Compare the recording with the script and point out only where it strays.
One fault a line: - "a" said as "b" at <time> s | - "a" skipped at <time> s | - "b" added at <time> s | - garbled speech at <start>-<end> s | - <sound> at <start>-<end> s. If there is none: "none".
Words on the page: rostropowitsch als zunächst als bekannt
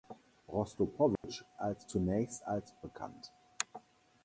- dropout at 1.2-1.2 s